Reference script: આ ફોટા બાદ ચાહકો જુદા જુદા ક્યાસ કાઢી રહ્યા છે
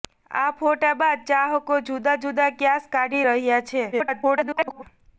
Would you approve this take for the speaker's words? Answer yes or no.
no